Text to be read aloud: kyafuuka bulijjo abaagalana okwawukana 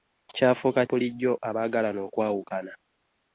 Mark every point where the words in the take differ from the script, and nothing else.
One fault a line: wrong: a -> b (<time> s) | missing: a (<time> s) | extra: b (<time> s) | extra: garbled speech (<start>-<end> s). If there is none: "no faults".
no faults